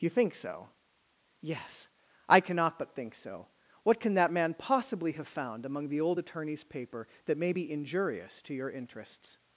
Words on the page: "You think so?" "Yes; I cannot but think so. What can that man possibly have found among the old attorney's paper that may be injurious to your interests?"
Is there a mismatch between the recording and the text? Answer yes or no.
no